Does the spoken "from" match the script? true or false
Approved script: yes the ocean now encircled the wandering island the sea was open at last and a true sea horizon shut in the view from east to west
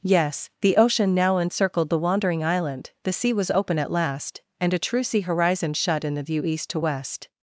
false